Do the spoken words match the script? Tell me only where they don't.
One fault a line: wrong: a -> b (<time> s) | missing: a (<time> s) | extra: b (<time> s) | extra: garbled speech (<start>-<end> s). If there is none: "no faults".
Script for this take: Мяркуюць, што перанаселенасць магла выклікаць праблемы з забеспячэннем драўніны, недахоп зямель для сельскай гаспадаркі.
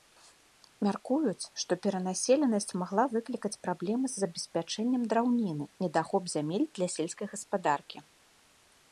no faults